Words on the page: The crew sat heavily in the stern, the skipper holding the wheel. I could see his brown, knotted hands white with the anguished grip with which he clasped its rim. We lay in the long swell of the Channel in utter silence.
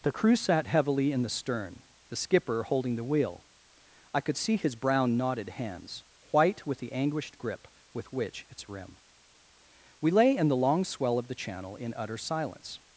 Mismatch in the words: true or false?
true